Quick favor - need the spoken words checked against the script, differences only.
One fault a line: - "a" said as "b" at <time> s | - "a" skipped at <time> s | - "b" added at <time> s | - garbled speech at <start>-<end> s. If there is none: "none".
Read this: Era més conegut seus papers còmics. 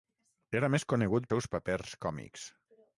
none